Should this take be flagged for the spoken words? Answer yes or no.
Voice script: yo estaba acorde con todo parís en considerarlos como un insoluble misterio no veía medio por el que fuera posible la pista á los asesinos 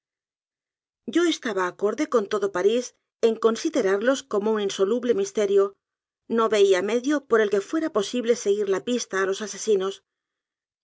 yes